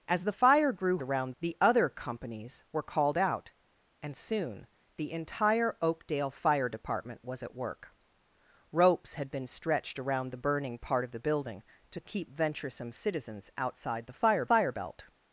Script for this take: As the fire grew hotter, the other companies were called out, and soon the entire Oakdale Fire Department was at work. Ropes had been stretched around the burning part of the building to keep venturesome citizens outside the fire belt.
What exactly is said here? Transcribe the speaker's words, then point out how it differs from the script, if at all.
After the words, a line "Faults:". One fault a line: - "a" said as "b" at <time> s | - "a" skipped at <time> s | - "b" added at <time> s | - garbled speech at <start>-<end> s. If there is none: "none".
As the fire grew around, the other companies were called out, and soon the entire Oakdale Fire Department was at work. Ropes had been stretched around the burning part of the building to keep venturesome citizens outside the fire fire belt.
Faults:
- "hotter" said as "around" at 1.0 s
- "fire" added at 14.5 s